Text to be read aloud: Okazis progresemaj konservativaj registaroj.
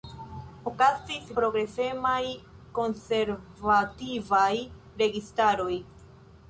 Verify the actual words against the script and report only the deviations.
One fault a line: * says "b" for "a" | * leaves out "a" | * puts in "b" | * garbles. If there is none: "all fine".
all fine